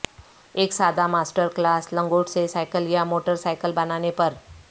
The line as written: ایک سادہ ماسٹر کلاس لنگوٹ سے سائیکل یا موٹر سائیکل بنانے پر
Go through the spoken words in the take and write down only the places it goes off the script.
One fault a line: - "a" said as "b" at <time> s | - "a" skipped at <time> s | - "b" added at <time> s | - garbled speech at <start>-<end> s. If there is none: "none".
none